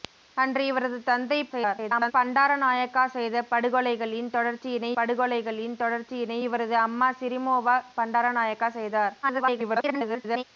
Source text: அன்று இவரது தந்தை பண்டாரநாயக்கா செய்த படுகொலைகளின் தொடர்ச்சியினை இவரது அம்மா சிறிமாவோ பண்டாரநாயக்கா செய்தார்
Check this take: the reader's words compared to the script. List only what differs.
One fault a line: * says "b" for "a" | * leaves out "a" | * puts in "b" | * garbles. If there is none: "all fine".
* garbles
* puts in "படுகொலைகளின் தொடர்ச்சியினை"
* garbles